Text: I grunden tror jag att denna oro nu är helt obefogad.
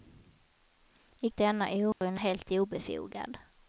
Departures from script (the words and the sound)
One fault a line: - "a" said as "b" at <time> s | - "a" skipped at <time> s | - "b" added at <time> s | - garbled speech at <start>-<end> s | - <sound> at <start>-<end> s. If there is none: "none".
- "grunden tror jag" skipped at 1.3 s
- dropout at 1.9-2.0 s
- "är" skipped at 2.2 s